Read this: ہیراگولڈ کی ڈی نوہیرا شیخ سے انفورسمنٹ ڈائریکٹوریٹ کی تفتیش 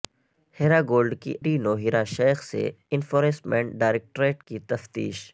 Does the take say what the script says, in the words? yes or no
yes